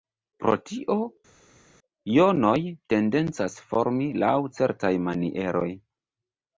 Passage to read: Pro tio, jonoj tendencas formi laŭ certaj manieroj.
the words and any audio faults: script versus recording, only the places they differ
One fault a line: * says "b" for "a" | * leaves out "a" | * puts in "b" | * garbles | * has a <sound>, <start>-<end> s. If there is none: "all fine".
all fine